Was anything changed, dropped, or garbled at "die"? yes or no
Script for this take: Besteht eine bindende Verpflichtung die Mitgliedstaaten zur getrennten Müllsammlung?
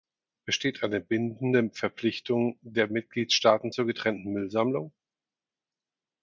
yes